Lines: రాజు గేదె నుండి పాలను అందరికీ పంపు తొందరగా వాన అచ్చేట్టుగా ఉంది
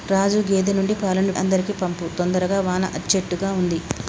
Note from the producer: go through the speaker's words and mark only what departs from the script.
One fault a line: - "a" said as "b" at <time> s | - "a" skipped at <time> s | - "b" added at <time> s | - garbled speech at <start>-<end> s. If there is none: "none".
none